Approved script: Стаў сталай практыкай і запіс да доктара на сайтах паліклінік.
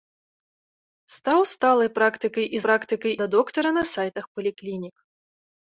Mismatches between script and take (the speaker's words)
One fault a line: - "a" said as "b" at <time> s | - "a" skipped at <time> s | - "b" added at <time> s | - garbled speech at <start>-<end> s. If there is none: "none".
- "запіс" said as "практыкай" at 2.6 s